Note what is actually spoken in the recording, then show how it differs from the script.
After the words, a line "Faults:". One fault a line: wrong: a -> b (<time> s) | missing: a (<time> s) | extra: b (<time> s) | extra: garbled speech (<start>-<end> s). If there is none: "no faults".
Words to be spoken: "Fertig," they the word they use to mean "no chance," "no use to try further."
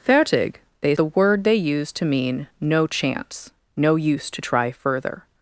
"Fertig," they the word they use to mean "no chance," "no use to try further."
Faults:
no faults